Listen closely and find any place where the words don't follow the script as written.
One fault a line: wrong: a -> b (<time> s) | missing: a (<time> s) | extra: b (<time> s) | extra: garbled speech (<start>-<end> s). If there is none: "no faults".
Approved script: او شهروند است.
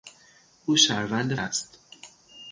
no faults